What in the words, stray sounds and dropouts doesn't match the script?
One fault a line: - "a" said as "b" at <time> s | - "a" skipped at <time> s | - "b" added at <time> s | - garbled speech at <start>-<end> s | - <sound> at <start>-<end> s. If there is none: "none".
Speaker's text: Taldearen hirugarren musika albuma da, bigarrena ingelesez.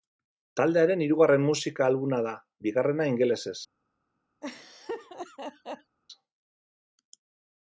- laugh at 4.4-6.0 s